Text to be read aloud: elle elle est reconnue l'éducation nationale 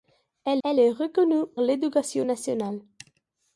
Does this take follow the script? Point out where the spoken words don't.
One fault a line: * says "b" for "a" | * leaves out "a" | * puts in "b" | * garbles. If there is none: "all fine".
all fine